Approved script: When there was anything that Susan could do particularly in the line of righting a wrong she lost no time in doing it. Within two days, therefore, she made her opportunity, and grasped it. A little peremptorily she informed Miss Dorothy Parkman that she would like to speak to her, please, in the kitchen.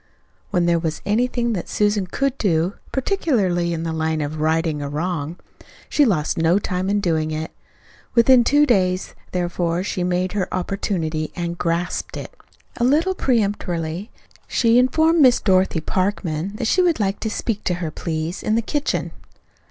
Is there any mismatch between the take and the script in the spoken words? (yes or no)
no